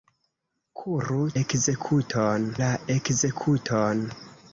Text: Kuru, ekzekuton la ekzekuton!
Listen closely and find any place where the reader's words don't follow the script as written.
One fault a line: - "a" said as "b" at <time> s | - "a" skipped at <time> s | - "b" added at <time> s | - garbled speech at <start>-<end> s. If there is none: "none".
none